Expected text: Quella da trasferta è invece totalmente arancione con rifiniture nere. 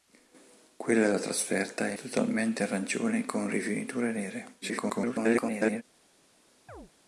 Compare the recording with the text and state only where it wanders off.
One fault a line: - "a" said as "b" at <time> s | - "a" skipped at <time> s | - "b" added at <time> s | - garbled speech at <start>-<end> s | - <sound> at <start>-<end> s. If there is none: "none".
- "invece" skipped at 1.9 s
- garbled speech at 4.6-5.8 s
- chirp at 6.7-6.9 s